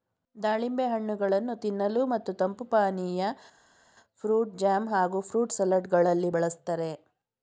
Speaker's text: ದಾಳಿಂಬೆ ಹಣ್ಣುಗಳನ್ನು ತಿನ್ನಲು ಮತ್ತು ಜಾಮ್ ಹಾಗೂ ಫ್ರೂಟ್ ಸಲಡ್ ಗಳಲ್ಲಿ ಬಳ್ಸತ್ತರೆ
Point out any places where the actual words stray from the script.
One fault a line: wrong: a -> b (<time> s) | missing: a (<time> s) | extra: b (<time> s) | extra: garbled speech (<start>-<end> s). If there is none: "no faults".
extra: ತಂಪು ಪಾನೀಯ ಫ್ರೂಟ್ (2.3 s)